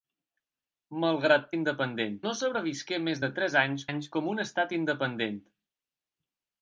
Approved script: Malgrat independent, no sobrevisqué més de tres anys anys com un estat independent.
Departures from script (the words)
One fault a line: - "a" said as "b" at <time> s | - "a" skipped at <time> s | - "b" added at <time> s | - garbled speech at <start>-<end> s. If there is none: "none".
none